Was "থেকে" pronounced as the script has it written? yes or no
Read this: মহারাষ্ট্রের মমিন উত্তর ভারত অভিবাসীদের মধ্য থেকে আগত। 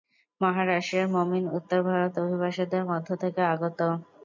yes